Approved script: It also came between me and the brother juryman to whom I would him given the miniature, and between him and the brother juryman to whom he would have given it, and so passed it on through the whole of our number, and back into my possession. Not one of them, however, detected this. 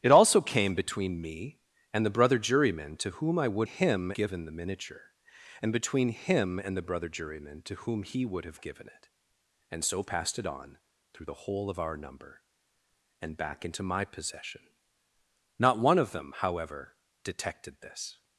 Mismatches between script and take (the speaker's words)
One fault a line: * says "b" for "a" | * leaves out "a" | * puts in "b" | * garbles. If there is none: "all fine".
all fine